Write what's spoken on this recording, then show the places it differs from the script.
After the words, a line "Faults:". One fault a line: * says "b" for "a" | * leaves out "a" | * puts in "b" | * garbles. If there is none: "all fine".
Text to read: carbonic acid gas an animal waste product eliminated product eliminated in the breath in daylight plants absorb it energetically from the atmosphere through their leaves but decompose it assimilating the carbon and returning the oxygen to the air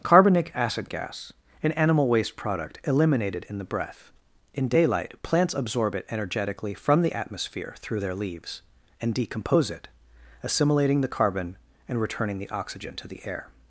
carbonic acid gas an animal waste product eliminated in the breath in daylight plants absorb it energetically from the atmosphere through their leaves and decompose it assimilating the carbon and returning the oxygen to the air
Faults:
* leaves out "product eliminated"
* says "and" for "but"